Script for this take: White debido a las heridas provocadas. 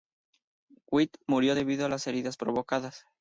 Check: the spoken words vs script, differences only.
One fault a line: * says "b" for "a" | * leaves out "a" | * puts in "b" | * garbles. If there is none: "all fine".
* puts in "murió"